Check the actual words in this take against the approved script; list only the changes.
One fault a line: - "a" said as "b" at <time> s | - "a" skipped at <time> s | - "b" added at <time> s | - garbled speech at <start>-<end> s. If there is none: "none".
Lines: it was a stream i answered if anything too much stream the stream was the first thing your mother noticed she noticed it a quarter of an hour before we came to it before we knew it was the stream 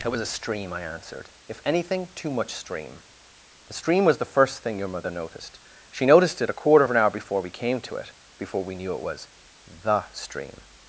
none